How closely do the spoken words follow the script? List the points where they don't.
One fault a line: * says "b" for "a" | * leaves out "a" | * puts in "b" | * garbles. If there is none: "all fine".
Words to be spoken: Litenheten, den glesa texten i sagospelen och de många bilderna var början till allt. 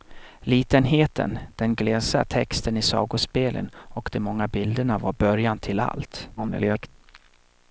* garbles